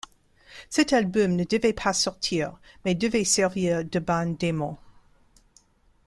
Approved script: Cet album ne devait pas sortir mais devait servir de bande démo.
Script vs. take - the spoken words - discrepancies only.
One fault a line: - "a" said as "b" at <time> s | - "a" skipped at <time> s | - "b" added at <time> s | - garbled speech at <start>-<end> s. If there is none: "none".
none